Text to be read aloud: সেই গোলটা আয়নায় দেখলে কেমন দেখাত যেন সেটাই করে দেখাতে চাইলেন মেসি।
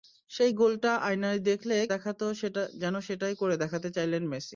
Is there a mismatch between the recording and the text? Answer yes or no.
yes